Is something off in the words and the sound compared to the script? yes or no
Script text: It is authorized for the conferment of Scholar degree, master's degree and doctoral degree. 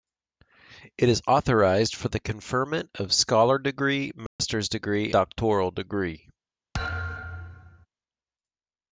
yes